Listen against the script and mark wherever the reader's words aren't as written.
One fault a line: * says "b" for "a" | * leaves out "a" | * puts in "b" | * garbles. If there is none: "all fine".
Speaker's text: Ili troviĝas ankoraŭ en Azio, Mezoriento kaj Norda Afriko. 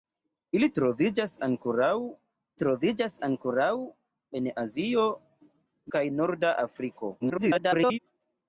* puts in "troviĝas ankoraŭ"
* leaves out "Mezoriento"
* garbles